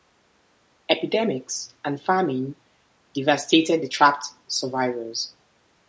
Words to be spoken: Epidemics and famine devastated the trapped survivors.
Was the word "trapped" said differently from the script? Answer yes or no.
no